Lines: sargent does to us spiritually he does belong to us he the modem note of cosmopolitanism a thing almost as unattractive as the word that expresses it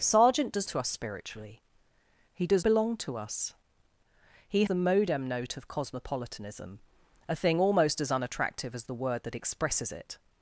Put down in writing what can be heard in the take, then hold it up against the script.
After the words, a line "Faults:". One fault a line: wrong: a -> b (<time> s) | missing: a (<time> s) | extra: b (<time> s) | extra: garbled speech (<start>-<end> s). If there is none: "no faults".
sargent does to us spiritually he does belong to us he the modem note of cosmopolitanism a thing almost as unattractive as the word that expresses it
Faults:
no faults